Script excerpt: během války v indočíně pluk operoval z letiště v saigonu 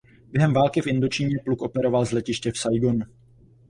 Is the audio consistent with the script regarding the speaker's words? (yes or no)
yes